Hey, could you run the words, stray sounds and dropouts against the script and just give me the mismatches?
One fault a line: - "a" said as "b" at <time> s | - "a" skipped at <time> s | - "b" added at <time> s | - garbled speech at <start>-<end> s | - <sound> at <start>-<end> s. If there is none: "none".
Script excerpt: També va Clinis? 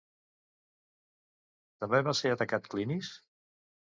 - "ser atacat" added at 2.2 s